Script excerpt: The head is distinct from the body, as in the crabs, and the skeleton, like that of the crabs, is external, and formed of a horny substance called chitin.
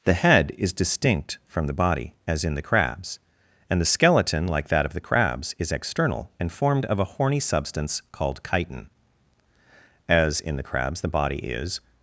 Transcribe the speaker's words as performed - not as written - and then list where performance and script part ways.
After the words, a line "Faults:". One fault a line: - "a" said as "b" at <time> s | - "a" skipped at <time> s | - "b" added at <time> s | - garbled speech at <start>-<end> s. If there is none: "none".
The head is distinct from the body, as in the crabs, and the skeleton, like that of the crabs, is external, and formed of a horny substance called chitin. As in the crabs, the body is
Faults:
- "As in the crabs the body is" added at 10.1 s